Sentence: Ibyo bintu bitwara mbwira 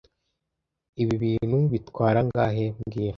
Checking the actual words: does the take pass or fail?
fail